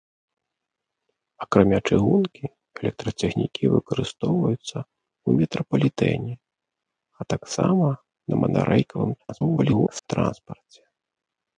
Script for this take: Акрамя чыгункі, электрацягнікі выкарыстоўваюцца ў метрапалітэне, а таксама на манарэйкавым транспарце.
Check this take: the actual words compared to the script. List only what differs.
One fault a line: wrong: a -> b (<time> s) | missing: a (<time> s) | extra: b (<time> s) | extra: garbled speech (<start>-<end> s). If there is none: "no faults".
extra: garbled speech (9.2-10.1 s)